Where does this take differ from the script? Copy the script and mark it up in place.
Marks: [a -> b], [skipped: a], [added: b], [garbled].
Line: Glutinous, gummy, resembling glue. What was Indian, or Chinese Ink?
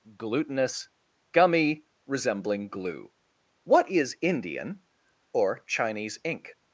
Glutinous, gummy, resembling glue. What [was -> is] Indian, or Chinese Ink?